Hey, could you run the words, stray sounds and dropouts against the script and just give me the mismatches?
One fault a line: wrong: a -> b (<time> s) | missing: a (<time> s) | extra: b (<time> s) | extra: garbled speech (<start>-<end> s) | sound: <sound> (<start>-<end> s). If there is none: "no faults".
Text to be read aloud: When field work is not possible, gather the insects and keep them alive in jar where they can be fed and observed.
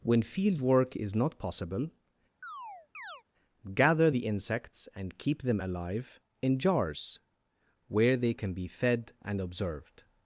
sound: chirp (2.4-3.2 s)
wrong: jar -> jars (6.6 s)